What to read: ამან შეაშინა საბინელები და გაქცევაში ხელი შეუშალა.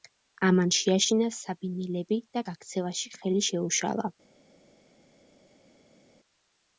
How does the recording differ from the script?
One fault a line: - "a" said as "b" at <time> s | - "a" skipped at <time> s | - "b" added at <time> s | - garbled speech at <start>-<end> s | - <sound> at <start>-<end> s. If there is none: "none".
none